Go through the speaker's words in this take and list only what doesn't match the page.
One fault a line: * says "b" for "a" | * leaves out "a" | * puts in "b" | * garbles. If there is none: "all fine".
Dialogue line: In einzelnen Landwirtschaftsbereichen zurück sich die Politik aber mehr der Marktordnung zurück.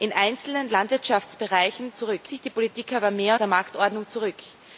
all fine